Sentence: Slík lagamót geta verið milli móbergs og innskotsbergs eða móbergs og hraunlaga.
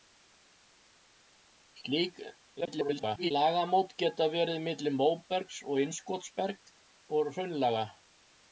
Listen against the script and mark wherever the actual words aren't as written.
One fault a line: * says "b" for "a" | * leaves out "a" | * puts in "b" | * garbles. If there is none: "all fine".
* garbles
* leaves out "eða móbergs"